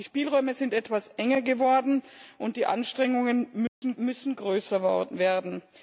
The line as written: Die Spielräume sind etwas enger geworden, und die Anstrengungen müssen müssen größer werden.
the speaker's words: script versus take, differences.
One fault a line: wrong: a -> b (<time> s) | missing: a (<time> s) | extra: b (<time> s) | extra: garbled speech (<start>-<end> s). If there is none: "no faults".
no faults